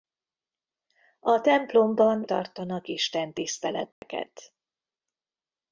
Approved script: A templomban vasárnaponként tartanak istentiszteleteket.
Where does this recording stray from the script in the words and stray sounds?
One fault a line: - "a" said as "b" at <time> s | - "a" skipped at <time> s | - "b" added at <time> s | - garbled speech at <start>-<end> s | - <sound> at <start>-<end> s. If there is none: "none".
- "vasárnaponként" skipped at 2.2 s
- dropout at 3.9-4.0 s